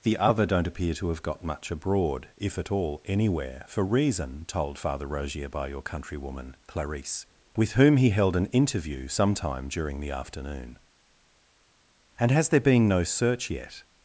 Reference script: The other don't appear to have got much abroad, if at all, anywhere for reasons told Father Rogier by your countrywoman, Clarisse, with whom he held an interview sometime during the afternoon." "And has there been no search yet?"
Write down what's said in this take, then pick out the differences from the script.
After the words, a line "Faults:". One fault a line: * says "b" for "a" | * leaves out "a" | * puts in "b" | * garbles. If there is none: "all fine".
The other don't appear to have got much abroad, if at all, anywhere for reason told Father Rogier by your countrywoman, Clarisse, with whom he held an interview sometime during the afternoon." "And has there been no search yet?"
Faults:
* says "reason" for "reasons"